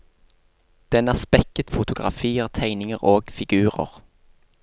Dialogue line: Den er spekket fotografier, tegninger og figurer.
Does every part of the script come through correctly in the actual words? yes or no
yes